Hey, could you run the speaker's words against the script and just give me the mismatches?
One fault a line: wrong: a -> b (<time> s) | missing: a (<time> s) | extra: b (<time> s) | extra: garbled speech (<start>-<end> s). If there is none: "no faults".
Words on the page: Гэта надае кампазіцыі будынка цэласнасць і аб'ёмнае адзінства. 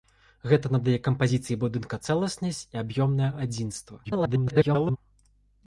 extra: garbled speech (4.0-5.0 s)